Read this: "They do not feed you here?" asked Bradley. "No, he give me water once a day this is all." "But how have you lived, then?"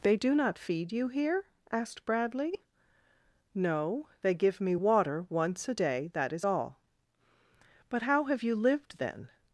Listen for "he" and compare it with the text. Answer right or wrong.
wrong